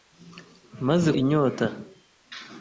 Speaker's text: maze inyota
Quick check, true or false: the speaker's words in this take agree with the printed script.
true